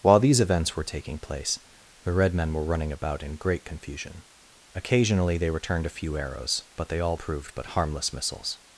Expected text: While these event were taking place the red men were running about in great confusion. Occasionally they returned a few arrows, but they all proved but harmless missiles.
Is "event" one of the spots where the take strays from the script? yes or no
yes